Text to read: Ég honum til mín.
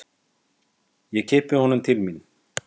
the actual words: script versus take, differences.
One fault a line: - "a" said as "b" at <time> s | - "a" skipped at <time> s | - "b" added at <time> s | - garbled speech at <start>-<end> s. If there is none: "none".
- "kippi" added at 1.3 s